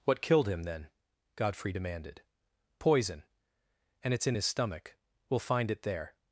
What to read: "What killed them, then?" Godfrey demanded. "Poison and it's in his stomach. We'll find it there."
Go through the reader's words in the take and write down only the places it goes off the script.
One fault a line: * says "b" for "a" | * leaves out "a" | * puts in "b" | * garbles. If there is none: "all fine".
* says "him" for "them"